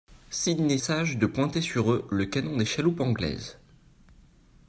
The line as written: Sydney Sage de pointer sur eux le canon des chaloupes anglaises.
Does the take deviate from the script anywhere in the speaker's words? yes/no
no